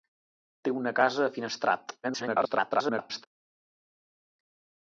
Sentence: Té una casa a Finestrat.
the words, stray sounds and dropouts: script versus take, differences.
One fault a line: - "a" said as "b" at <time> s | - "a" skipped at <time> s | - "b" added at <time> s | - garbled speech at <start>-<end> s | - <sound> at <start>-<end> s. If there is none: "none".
- garbled speech at 2.0-3.3 s